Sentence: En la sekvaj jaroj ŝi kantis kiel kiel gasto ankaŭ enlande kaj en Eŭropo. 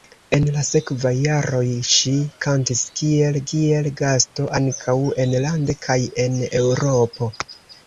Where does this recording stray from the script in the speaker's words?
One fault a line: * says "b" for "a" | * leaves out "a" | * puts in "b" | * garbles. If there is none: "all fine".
all fine